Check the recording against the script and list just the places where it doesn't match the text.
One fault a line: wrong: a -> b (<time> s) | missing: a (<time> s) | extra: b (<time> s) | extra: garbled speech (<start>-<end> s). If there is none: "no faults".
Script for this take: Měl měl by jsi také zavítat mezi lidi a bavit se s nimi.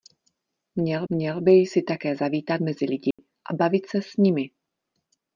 no faults